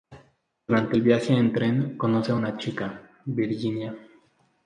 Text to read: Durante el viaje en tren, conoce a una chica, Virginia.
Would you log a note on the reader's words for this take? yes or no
no